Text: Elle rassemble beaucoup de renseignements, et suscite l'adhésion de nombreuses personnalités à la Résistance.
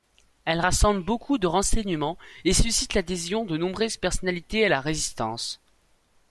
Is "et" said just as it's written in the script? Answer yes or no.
yes